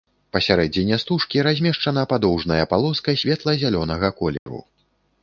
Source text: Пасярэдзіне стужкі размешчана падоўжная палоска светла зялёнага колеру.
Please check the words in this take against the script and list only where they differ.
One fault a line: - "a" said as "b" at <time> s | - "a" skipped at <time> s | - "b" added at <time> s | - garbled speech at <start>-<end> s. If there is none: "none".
none